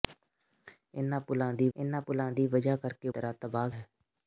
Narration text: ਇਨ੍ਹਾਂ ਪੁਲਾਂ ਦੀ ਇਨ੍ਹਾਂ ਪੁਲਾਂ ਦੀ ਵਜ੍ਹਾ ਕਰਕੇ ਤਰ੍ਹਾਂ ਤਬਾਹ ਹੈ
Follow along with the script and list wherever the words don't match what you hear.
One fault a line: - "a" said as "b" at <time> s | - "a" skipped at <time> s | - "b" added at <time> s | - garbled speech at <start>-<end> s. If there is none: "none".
none